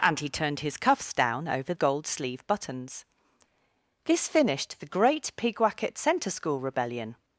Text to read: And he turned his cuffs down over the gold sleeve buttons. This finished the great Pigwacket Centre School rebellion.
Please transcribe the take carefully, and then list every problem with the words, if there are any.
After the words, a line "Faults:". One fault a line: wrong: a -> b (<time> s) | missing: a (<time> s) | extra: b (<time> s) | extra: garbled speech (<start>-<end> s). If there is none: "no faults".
And he turned his cuffs down over gold sleeve buttons. This finished the great Pigwacket Centre School rebellion.
Faults:
missing: the (1.7 s)